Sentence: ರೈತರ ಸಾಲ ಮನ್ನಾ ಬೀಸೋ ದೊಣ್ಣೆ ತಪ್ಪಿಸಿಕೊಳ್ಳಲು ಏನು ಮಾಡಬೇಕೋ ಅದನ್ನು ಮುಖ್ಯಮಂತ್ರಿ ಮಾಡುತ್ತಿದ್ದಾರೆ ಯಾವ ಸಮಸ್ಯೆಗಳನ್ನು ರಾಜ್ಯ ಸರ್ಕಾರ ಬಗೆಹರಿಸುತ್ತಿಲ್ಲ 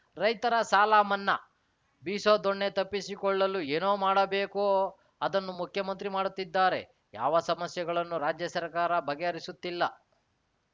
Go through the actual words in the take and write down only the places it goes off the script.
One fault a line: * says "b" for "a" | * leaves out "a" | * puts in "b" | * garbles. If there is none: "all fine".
all fine